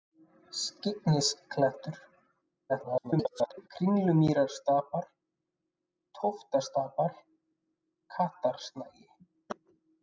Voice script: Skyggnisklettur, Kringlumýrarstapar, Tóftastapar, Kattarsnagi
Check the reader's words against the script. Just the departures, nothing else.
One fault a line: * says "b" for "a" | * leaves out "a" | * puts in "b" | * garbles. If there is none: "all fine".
* garbles